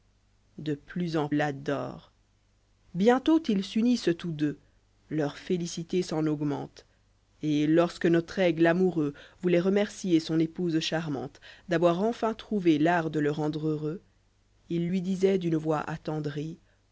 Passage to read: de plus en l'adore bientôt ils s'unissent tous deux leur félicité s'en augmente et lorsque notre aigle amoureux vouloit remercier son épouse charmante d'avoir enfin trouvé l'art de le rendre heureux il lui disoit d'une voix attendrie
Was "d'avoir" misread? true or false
false